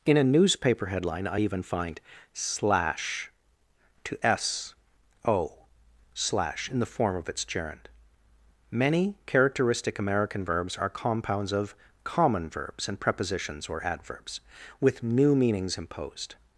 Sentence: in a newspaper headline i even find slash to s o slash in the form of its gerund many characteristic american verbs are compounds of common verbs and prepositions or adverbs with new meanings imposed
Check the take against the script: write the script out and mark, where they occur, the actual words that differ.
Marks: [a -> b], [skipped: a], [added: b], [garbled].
in a newspaper headline i even find slash to s o slash in the form of its gerund many characteristic american verbs are compounds of common verbs and prepositions or adverbs with new meanings imposed